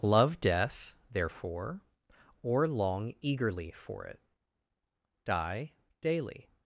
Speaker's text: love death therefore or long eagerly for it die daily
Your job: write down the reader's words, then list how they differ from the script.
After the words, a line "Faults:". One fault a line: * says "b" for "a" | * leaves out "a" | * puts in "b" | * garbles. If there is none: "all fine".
love death therefore or long eagerly for it die daily
Faults:
all fine